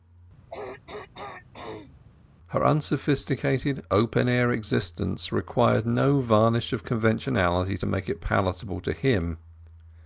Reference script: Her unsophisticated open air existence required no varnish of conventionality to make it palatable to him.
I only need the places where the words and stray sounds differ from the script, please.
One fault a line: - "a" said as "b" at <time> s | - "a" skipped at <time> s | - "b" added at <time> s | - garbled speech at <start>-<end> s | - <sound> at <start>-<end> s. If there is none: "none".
- throat clearing at 0.5-1.9 s